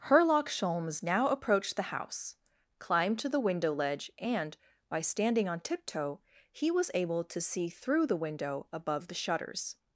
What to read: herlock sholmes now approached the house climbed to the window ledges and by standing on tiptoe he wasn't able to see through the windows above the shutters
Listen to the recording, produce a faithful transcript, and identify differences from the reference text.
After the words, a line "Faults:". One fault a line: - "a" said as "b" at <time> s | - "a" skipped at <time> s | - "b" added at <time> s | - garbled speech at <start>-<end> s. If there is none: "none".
herlock sholmes now approached the house climbed to the window ledge and by standing on tiptoe he was able to see through the window above the shutters
Faults:
- "ledges" said as "ledge" at 3.7 s
- "wasn't" said as "was" at 6.7 s
- "windows" said as "window" at 8.2 s